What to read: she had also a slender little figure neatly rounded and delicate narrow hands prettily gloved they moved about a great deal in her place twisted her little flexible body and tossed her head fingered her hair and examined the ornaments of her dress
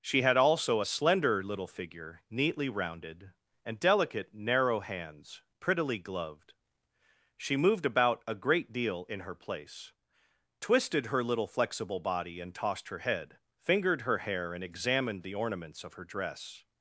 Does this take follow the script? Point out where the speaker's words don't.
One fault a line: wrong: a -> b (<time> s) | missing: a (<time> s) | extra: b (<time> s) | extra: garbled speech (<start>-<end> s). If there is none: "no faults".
wrong: they -> she (7.4 s)